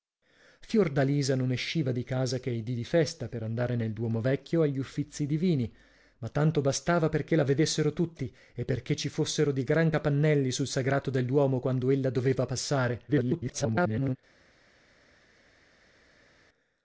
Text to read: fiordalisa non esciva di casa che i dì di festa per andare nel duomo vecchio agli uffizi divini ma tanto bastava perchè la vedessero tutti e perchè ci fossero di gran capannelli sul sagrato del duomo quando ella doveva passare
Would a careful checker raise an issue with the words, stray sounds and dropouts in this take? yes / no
yes